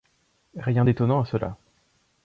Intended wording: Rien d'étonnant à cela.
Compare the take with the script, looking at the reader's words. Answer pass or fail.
pass